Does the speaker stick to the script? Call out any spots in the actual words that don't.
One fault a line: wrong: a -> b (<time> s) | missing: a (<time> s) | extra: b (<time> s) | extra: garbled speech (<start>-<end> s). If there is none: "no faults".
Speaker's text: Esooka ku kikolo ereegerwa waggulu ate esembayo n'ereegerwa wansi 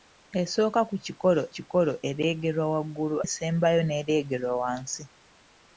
extra: kikolo (1.5 s)
missing: ate (3.2 s)